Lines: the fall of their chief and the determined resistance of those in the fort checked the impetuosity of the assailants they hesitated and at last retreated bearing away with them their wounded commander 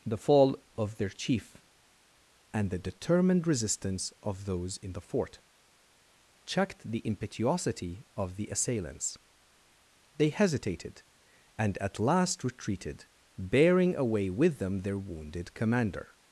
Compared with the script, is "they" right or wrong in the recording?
right